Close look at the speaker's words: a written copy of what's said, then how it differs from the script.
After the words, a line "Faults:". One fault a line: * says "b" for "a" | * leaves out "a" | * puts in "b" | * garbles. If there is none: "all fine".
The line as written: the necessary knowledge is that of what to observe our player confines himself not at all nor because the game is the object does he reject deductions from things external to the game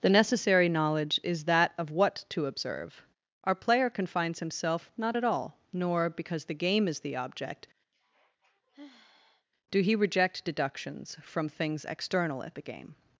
the necessary knowledge is that of what to observe our player confines himself not at all nor because the game is the object do he reject deductions from things external at the game
Faults:
* says "do" for "does"
* says "at" for "to"